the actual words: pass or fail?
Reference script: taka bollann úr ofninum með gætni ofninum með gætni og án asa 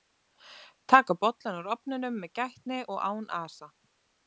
fail